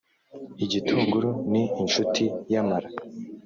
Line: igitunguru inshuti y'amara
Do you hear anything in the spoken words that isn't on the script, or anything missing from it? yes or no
yes